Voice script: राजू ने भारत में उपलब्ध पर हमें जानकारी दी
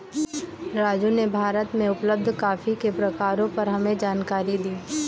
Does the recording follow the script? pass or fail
fail